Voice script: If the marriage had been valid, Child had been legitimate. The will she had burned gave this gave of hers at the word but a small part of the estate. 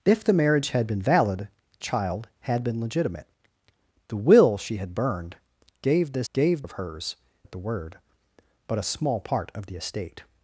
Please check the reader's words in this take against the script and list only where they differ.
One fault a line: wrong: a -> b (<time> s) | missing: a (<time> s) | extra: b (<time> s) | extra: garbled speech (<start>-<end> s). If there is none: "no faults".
no faults